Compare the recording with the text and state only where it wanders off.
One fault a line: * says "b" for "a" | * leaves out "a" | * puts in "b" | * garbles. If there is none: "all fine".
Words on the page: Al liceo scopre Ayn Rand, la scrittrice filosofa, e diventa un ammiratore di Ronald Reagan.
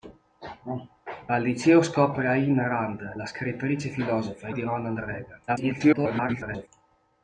* leaves out "diventa un ammiratore"
* garbles